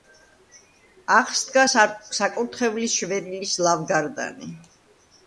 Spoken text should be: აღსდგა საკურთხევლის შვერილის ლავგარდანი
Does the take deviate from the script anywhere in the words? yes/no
no